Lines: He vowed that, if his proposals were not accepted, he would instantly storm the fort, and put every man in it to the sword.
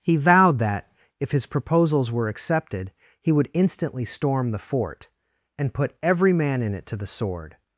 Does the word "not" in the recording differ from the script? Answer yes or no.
yes